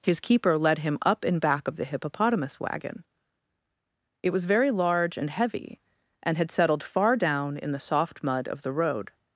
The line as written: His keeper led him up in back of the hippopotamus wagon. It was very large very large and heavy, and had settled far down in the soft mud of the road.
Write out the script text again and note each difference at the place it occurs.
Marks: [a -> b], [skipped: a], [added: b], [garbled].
His keeper led him up in back of the hippopotamus wagon. It was very large [skipped: very large] and heavy, and had settled far down in the soft mud of the road.